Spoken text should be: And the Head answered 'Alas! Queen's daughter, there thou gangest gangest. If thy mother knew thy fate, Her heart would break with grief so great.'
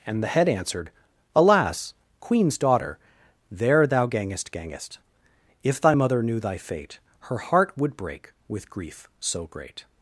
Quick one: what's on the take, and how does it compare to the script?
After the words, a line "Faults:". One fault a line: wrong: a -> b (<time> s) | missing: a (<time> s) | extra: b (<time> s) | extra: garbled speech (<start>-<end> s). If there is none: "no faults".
And the Head answered 'Alas! Queen's daughter, there thou gangest gangest. If thy mother knew thy fate, Her heart would break with grief so great.'
Faults:
no faults